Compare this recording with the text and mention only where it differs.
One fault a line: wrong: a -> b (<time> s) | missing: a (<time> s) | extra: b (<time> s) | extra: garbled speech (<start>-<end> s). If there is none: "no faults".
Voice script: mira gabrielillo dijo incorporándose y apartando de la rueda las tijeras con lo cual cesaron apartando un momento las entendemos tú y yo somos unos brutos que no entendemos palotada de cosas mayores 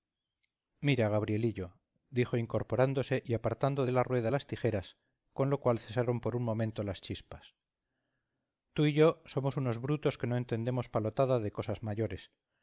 wrong: apartando -> por (6.2 s)
wrong: entendemos -> chispas (7.0 s)